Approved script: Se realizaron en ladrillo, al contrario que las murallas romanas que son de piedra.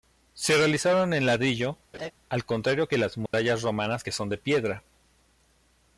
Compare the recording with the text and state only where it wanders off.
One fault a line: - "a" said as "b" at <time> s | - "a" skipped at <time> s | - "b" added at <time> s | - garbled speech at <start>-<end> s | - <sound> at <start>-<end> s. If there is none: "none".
- laugh at 1.9-2.1 s
- dropout at 3.3-3.3 s